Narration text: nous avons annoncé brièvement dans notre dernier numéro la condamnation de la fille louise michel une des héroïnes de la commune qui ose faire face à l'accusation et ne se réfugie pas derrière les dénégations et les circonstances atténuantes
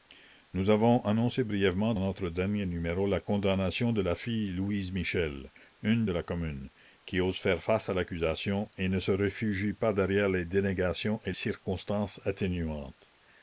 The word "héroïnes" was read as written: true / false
false